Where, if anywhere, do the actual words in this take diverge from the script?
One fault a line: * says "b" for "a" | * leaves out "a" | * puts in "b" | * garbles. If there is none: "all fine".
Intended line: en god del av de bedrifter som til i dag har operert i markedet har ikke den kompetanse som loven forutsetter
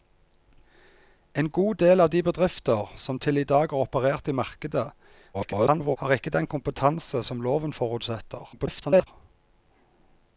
* garbles
* garbles